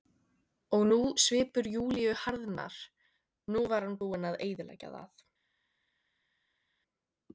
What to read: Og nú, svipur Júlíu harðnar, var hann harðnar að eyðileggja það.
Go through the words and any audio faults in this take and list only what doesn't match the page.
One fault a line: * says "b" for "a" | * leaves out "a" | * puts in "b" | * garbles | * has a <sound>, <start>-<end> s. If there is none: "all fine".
* puts in "nú"
* says "búinn" for "harðnar"